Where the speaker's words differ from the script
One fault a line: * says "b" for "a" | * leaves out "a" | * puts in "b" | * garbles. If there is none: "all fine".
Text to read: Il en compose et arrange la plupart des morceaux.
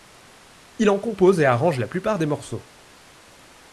all fine